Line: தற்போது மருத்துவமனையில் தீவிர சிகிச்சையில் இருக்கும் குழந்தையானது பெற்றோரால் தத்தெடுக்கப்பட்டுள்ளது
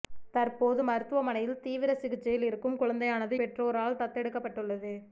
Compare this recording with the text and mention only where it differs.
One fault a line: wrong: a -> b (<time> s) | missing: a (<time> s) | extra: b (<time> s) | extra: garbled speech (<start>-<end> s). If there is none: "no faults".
no faults